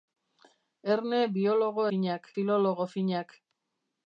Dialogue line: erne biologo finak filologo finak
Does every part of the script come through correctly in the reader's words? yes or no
yes